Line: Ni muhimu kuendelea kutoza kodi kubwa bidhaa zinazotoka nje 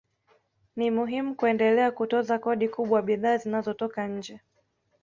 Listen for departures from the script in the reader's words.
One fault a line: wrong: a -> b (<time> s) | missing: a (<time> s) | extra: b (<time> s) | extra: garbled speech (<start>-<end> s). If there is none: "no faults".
no faults